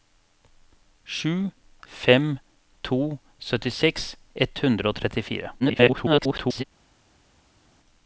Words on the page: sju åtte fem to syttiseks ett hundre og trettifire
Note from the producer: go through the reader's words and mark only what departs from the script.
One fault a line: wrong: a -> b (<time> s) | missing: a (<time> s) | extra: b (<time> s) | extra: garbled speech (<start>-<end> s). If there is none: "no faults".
missing: åtte (1.5 s)
extra: garbled speech (5.6-6.6 s)